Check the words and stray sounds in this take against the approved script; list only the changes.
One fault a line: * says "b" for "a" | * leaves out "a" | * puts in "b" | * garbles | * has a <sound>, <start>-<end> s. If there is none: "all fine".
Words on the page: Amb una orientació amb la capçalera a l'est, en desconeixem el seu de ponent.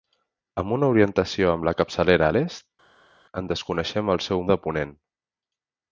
all fine